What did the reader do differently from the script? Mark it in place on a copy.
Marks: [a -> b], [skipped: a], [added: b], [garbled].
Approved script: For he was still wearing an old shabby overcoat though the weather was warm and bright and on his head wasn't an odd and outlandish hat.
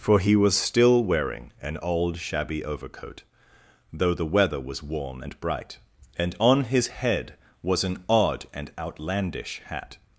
For he was still wearing an old shabby overcoat though the weather was warm and bright and on his head [wasn't -> was] an odd and outlandish hat.